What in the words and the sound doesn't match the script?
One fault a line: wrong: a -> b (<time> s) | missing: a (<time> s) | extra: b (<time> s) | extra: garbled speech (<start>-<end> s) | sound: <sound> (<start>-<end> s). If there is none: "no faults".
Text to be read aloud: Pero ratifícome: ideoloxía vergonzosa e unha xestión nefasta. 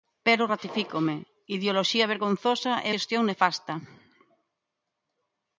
missing: unha (2.9 s)